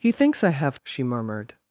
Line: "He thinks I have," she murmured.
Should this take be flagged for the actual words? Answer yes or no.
no